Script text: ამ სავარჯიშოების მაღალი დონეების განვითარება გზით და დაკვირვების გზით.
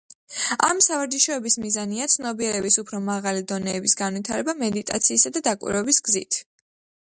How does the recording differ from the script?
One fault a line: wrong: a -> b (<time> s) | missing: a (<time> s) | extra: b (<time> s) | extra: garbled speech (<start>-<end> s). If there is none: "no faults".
extra: მიზანია ცნობიერების უფრო (1.6 s)
wrong: გზით -> მედიტაციისა (4.7 s)